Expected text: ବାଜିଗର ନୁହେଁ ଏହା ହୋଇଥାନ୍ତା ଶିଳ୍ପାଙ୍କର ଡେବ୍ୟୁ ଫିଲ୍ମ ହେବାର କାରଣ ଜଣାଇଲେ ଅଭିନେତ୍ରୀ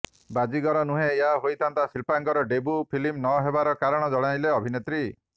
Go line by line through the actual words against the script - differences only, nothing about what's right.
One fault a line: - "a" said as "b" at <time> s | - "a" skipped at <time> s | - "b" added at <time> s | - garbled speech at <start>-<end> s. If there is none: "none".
- "ନ" added at 3.2 s